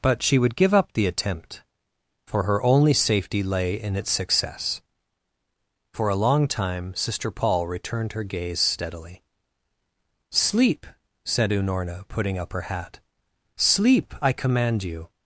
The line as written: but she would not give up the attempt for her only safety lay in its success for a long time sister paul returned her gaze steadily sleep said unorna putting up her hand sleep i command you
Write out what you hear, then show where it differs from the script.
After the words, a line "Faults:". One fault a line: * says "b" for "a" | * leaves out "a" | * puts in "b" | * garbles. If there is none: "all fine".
but she would give up the attempt for her only safety lay in its success for a long time sister paul returned her gaze steadily sleep said unorna putting up her hat sleep i command you
Faults:
* leaves out "not"
* says "hat" for "hand"